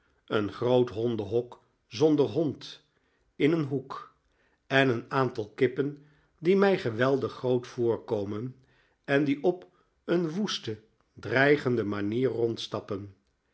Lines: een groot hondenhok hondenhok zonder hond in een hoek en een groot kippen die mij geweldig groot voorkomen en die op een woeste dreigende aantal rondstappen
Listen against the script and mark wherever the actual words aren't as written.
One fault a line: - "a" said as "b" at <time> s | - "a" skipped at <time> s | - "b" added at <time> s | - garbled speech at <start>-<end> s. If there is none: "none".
- "hondenhok" skipped at 1.6 s
- "groot" said as "aantal" at 5.1 s
- "aantal" said as "manier" at 11.8 s